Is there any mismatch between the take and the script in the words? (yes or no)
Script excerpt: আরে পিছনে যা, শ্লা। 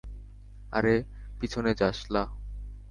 no